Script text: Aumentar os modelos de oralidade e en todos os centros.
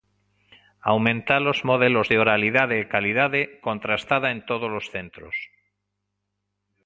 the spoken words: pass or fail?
fail